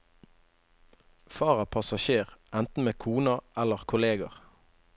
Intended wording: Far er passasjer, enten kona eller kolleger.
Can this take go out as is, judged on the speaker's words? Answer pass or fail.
fail